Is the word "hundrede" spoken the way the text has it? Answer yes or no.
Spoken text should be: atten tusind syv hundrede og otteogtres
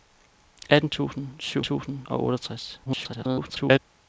no